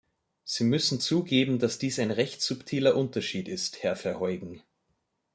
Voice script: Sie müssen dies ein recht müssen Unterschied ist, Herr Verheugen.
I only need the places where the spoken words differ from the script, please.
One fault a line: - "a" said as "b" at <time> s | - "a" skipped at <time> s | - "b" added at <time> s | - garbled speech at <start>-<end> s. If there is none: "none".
- "zugeben dass" added at 1.0 s
- "müssen" said as "subtiler" at 2.4 s